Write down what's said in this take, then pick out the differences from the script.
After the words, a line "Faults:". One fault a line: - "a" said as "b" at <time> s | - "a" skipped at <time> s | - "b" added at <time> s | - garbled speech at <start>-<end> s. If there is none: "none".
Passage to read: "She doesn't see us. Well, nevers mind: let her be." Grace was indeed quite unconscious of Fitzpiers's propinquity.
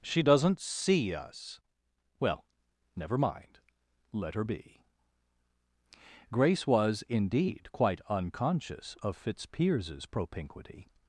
"She doesn't see us. Well, never mind: let her be." Grace was indeed quite unconscious of Fitzpiers's propinquity.
Faults:
- "nevers" said as "never" at 3.0 s